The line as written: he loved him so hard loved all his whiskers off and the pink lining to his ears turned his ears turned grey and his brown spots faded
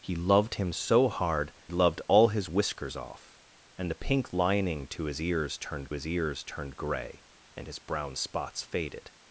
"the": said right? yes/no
yes